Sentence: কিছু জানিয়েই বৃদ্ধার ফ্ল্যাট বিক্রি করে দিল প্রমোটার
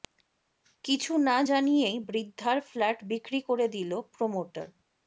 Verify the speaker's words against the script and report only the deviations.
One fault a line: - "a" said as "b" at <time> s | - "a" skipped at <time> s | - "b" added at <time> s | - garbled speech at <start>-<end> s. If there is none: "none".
- "না" added at 1.3 s